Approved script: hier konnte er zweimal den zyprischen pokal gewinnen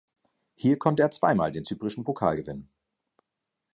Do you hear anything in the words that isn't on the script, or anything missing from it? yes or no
no